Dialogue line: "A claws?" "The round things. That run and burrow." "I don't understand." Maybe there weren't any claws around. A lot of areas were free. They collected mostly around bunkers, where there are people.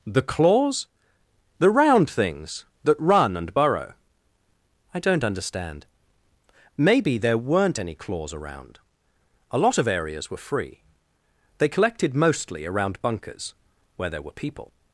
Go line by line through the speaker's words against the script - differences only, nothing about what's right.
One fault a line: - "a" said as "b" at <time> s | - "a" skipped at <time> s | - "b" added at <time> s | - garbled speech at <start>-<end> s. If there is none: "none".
- "A" said as "The" at 0.1 s
- "are" said as "were" at 14.2 s